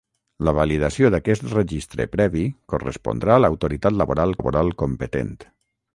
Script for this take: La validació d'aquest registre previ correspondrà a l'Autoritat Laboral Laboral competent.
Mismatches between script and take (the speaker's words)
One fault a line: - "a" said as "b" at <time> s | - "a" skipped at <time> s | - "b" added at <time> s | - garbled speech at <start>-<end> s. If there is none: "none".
none